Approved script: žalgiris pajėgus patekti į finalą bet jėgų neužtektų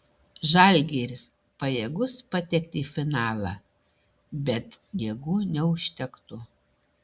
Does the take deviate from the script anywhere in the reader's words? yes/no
no